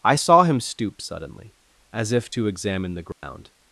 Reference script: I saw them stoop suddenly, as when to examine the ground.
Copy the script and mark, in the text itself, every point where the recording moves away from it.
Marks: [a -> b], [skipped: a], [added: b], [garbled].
I saw [them -> him] stoop suddenly, as [when -> if] to examine the ground.